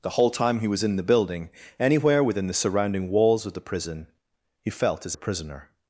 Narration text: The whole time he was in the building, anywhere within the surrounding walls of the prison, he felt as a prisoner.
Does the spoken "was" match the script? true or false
true